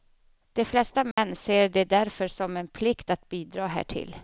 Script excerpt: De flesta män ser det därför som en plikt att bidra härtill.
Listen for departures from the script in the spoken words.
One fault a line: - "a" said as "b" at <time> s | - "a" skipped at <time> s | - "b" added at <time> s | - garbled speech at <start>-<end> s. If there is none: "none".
none